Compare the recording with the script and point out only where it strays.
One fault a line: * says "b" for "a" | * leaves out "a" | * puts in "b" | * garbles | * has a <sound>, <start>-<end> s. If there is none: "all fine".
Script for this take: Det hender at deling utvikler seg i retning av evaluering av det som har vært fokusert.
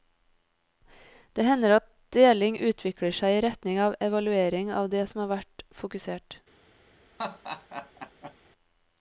* has a laugh, 7.2-8.4 s